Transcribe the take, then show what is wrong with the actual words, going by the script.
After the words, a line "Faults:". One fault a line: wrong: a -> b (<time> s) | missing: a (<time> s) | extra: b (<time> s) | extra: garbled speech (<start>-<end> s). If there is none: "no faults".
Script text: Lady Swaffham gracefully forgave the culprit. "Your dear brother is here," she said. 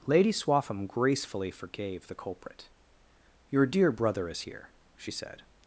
Lady Swaffham gracefully forgave the culprit. "Your dear brother is here," she said.
Faults:
no faults